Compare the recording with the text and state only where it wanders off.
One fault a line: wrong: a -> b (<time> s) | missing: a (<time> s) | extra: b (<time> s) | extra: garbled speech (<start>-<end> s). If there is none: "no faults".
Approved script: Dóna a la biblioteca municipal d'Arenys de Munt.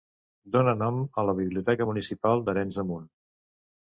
extra: nom (0.8 s)